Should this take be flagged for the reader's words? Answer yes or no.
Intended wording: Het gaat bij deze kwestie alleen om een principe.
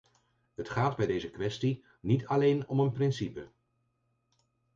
yes